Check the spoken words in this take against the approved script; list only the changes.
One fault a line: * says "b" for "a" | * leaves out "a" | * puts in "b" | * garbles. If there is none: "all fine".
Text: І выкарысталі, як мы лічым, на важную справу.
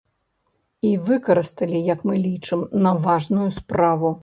all fine